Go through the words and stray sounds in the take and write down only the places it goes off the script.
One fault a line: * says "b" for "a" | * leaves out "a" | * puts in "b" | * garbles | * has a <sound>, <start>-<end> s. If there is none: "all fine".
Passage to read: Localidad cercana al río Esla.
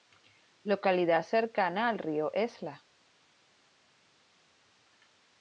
all fine